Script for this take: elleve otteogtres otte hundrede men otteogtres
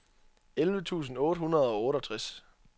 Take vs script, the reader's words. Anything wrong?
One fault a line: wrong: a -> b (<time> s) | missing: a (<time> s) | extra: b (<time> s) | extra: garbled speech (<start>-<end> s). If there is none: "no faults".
wrong: otteogtres -> tusind (0.8 s)
wrong: men -> og (1.7 s)